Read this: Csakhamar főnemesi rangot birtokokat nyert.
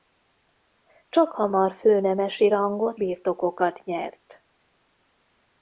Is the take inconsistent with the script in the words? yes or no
no